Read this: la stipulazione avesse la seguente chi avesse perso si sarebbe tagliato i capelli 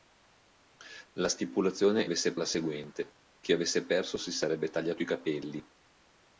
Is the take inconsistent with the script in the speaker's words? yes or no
no